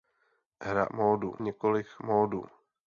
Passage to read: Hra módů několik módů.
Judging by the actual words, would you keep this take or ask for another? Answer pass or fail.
pass